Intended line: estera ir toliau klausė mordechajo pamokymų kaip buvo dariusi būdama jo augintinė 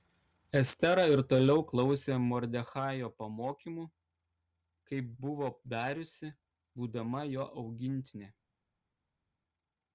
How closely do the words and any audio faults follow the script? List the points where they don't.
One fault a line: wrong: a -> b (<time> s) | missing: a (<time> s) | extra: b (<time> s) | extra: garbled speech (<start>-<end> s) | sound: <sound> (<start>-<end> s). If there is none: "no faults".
no faults